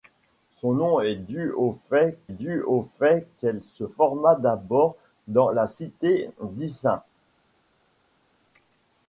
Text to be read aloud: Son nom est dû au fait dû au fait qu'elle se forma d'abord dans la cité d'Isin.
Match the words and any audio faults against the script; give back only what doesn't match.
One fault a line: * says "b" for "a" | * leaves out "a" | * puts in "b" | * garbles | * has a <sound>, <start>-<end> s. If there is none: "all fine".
all fine